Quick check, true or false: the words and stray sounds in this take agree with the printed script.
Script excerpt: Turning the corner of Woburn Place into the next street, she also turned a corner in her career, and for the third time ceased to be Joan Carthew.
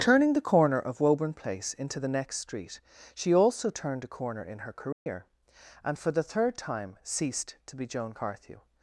false